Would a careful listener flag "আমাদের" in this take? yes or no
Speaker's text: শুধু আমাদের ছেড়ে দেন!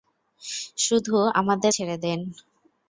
no